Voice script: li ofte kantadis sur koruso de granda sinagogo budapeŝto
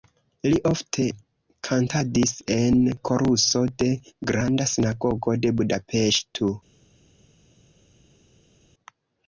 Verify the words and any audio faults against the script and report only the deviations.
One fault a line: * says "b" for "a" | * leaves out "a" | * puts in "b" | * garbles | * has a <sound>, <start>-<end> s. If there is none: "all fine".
* says "en" for "sur"
* puts in "de"